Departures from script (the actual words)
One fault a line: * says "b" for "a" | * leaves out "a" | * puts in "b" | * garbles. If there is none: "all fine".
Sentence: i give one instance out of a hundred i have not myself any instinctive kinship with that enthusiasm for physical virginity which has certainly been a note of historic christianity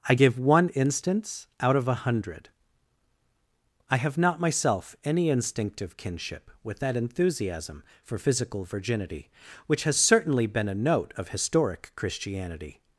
all fine